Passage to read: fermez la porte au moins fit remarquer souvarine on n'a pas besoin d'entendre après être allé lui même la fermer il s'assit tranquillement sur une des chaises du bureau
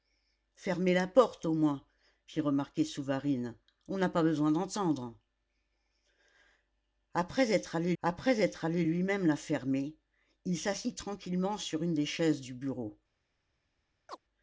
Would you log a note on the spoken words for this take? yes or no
yes